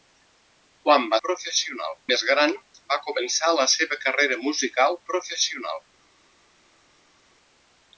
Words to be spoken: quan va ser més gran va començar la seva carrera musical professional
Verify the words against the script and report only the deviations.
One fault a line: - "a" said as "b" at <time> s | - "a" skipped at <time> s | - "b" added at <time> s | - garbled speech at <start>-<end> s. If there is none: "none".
- "ser" said as "professional" at 1.3 s